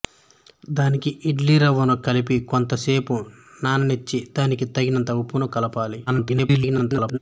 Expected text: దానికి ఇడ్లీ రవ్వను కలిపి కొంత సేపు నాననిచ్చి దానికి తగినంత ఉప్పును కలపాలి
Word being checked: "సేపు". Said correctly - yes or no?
yes